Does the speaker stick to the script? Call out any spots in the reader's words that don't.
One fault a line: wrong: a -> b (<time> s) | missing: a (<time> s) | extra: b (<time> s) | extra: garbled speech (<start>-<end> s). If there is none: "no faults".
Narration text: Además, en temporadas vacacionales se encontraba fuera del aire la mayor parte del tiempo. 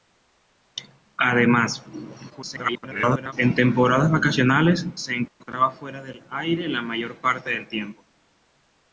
extra: garbled speech (2.3-3.3 s)